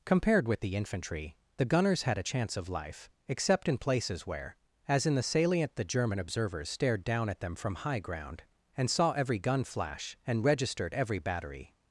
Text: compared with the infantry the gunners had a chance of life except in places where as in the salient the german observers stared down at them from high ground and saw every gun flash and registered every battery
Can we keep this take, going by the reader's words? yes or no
yes